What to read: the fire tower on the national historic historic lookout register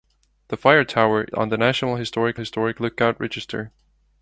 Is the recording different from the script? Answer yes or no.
no